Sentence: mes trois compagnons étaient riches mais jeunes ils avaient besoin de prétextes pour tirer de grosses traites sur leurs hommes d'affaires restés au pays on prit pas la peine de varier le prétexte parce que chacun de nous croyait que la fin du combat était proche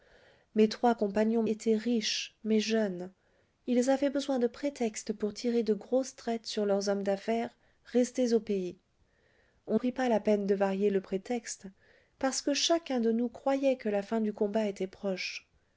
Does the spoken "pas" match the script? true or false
true